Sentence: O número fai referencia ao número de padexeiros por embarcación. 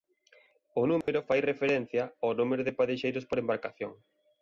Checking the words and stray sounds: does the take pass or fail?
fail